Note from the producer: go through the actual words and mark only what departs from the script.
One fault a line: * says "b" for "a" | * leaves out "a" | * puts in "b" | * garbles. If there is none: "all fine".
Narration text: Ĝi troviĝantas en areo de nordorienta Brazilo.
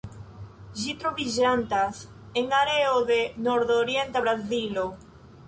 all fine